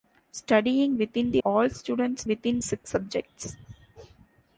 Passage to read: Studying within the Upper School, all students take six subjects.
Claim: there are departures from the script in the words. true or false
true